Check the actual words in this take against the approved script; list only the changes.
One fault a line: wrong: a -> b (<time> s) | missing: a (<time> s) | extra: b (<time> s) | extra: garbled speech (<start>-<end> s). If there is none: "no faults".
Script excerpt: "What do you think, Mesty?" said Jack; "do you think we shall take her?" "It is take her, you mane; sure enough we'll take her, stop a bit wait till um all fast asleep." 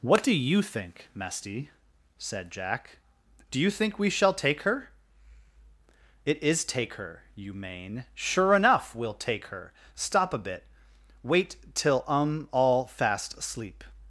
no faults